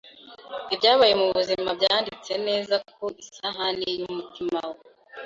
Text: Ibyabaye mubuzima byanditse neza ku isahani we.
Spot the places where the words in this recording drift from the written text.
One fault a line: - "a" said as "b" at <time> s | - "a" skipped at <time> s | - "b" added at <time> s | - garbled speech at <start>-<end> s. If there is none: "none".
- "yumutima" added at 4.0 s